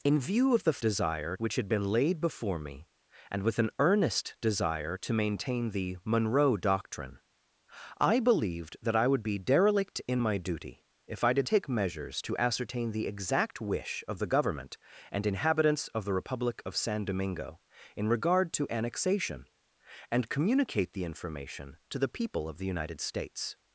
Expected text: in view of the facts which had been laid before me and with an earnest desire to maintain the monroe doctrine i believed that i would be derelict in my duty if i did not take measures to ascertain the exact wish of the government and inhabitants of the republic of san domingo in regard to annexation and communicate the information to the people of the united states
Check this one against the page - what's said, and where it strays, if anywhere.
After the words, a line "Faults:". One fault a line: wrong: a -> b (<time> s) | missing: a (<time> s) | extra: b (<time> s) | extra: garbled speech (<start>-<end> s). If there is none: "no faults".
in view of the desire which had been laid before me and with an earnest desire to maintain the monroe doctrine i believed that i would be derelict in my duty if i did take measures to ascertain the exact wish of the government and inhabitants of the republic of san domingo in regard to annexation and communicate the information to the people of the united states
Faults:
wrong: facts -> desire (0.8 s)
missing: not (11.5 s)